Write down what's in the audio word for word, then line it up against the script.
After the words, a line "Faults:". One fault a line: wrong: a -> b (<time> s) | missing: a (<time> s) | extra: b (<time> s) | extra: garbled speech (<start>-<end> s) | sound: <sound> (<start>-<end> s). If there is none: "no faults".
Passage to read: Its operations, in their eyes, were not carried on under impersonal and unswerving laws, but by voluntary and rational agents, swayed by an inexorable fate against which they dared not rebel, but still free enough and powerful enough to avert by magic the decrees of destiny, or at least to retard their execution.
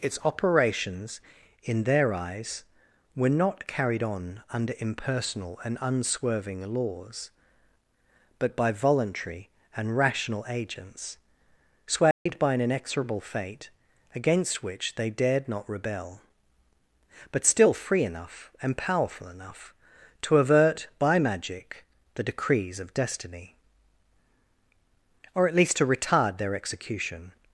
Its operations, in their eyes, were not carried on under impersonal and unswerving laws, but by voluntary and rational agents, swayed by an inexorable fate against which they dared not rebel, but still free enough and powerful enough to avert by magic the decrees of destiny, or at least to retard their execution.
Faults:
sound: dropout (12.1-12.3 s)